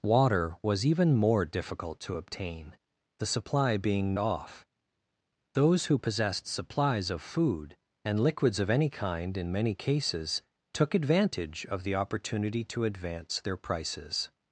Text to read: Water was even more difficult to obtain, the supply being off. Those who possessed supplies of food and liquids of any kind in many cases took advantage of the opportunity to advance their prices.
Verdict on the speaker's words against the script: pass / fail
pass